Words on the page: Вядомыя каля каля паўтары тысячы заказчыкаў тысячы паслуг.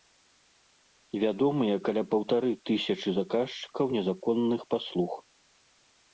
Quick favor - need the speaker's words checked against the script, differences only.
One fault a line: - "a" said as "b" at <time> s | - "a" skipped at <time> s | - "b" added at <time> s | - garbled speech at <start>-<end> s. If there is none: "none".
- "каля" skipped at 2.0 s
- "тысячы" said as "незаконных" at 4.0 s